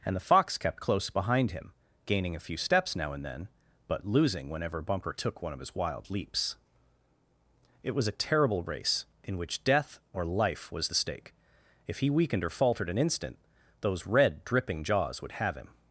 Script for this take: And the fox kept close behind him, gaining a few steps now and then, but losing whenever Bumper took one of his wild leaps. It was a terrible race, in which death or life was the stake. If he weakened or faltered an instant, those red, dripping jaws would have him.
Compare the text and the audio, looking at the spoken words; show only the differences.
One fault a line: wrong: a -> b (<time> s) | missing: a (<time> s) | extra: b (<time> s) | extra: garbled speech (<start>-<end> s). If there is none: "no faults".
no faults